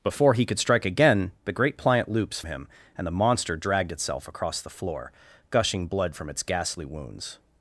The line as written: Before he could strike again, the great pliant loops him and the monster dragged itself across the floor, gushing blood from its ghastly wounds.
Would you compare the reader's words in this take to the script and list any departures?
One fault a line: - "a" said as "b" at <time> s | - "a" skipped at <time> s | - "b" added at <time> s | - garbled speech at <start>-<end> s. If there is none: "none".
none